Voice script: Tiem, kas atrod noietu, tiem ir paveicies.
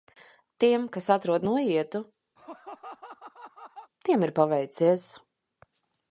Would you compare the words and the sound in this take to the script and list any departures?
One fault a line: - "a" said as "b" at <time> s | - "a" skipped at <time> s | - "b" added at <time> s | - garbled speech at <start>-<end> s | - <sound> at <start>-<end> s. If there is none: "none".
- laugh at 2.4-3.9 s